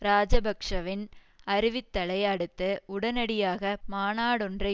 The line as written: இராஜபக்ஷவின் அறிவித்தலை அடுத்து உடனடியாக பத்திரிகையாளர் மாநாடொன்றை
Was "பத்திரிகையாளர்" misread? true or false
true